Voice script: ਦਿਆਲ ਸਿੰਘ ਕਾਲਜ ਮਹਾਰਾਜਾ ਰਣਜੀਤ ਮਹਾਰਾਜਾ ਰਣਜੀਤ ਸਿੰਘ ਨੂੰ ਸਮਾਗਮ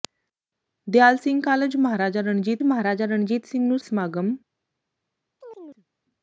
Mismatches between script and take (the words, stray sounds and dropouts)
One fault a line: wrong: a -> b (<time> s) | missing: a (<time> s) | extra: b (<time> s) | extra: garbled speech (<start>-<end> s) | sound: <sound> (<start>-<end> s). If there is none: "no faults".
sound: chirp (5.4-5.9 s)